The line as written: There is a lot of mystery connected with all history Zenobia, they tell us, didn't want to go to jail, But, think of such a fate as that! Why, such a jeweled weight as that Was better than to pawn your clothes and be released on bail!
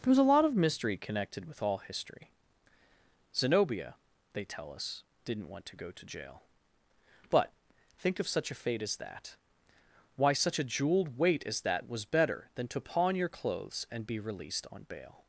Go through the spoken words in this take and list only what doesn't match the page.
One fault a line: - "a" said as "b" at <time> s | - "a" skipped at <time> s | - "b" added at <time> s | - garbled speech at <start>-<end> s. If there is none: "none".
- "is" said as "was" at 0.1 s